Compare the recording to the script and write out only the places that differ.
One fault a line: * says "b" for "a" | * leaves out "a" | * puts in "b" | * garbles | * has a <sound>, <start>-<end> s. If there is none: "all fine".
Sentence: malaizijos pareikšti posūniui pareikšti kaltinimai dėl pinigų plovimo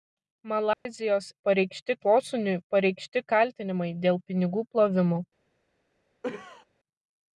* has a dropout, 0.7-0.9 s
* has a cough, 6.2-6.7 s